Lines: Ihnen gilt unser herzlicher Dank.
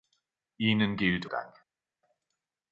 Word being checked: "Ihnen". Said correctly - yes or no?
yes